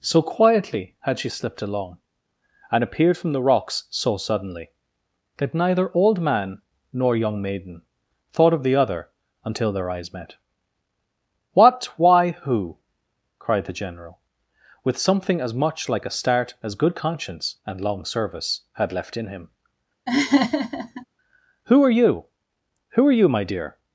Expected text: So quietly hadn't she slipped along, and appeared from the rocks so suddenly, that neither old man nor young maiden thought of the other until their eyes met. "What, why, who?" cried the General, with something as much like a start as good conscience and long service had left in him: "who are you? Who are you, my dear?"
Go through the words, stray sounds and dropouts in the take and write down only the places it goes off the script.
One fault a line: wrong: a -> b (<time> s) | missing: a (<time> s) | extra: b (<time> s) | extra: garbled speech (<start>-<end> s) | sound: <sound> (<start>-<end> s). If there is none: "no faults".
wrong: hadn't -> had (1.0 s)
sound: laugh (20.1-21.1 s)